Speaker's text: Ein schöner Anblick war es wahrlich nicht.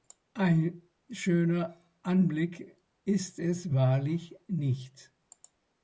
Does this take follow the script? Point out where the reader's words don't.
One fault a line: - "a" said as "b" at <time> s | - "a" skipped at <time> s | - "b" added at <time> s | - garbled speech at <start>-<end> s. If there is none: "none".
- "war" said as "ist" at 3.0 s